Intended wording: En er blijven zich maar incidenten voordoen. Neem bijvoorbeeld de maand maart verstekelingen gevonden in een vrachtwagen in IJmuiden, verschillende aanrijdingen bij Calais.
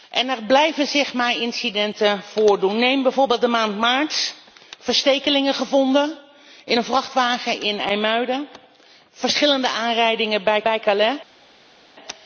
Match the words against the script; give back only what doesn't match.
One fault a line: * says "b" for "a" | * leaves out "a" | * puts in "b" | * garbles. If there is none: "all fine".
* puts in "bij"